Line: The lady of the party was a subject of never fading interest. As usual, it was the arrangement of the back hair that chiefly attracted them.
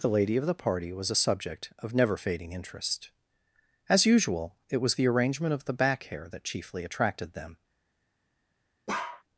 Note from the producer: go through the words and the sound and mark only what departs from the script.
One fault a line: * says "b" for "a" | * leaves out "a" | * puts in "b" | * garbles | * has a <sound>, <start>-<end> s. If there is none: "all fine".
* has a bark, 8.9-9.2 s